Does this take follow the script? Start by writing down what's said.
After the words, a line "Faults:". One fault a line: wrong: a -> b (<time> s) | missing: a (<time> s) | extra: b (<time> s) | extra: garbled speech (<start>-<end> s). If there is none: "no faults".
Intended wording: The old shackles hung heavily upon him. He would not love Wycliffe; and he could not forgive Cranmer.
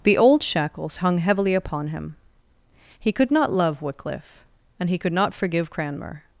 The old shackles hung heavily upon him. He could not love Wycliffe; and he could not forgive Cranmer.
Faults:
wrong: would -> could (3.1 s)